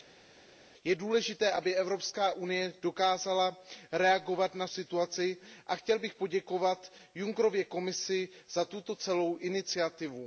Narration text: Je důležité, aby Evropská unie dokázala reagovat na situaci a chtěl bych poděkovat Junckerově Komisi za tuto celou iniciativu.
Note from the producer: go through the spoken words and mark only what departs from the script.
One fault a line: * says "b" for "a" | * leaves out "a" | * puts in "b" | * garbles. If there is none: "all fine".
all fine